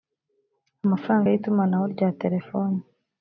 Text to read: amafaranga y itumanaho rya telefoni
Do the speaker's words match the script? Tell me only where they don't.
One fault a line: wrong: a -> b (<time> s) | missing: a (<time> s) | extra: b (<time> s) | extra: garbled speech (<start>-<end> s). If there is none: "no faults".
no faults